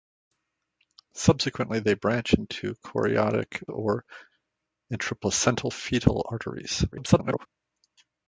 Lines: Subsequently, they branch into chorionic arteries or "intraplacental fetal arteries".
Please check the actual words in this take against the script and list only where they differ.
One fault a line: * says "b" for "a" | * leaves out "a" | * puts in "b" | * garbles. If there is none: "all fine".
* leaves out "arteries"
* garbles